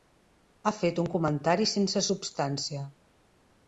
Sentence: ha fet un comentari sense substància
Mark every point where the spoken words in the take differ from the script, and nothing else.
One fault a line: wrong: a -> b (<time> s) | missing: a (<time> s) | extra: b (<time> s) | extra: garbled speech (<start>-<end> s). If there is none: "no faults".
no faults